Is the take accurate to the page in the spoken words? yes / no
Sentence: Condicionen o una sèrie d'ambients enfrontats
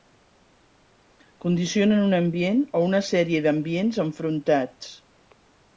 no